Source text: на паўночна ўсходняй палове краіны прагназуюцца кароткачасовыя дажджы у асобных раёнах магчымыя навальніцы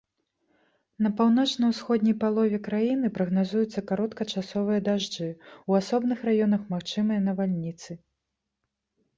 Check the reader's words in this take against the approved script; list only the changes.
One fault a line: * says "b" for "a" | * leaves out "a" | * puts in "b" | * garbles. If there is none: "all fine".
all fine